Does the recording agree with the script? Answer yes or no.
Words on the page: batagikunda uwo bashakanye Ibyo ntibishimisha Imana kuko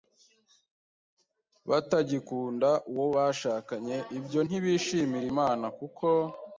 yes